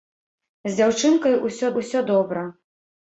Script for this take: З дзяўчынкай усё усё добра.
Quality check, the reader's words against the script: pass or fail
pass